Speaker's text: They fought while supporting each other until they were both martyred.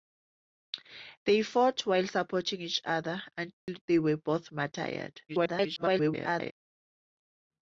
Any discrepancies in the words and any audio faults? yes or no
yes